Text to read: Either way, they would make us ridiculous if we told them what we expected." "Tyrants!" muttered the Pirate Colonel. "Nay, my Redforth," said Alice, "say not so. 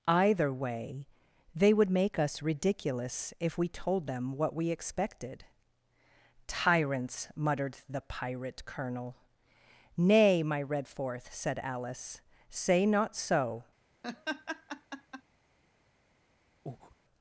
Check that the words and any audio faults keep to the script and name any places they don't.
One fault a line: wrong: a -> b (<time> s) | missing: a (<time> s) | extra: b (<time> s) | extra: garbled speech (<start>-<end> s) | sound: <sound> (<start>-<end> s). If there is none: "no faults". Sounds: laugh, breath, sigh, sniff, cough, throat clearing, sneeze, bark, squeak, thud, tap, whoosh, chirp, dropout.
sound: laugh (14.0-15.2 s)
sound: breath (16.7-17.0 s)